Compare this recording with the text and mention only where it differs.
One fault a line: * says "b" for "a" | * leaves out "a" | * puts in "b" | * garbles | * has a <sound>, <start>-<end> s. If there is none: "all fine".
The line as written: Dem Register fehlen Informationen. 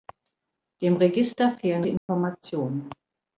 * has a dropout, 2.0-2.1 s